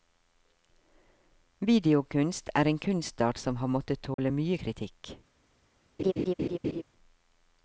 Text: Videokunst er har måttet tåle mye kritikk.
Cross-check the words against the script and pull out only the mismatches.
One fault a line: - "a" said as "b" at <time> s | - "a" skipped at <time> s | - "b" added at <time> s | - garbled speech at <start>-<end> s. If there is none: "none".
- "en kunstart som" added at 2.6 s